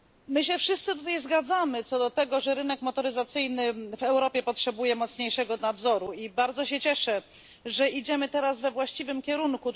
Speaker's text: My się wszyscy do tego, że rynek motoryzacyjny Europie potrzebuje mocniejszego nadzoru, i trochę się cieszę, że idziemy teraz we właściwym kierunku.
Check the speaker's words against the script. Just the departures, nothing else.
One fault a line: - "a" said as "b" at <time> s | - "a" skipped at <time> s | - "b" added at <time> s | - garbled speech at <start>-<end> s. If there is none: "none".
- "tutaj zgadzamy co" added at 0.9 s
- "w" added at 3.7 s
- "trochę" said as "bardzo" at 6.3 s